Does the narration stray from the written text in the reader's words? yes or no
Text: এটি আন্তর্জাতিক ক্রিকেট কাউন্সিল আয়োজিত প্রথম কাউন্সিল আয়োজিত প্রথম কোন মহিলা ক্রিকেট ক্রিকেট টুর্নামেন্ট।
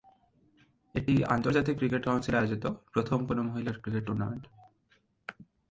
yes